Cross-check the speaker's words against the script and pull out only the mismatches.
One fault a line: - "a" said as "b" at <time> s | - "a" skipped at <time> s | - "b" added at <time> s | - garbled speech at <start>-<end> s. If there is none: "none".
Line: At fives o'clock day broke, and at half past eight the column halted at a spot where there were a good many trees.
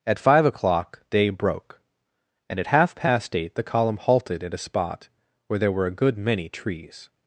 - "fives" said as "five" at 0.2 s